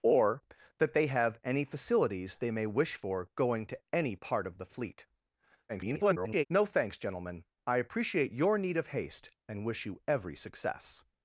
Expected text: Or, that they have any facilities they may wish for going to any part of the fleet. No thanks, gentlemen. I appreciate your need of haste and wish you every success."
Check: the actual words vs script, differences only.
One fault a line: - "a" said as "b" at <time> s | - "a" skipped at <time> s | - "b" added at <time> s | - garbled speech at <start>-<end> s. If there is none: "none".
- garbled speech at 5.7-6.5 s